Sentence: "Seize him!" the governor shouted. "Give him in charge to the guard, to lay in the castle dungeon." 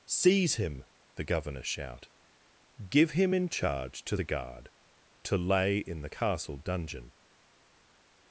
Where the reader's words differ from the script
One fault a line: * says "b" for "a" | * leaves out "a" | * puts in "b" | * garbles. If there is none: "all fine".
* says "shout" for "shouted"